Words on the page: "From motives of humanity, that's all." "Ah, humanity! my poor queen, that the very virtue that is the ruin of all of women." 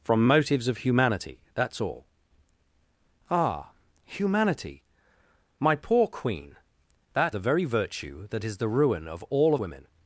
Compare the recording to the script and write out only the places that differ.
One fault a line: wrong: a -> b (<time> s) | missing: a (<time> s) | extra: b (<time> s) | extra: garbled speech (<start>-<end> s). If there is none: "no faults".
no faults